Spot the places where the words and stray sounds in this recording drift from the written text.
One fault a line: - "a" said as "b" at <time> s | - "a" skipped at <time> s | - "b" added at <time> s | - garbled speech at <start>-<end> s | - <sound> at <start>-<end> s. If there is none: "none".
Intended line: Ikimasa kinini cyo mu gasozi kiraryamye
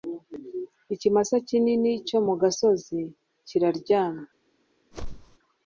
- whoosh at 4.9-5.4 s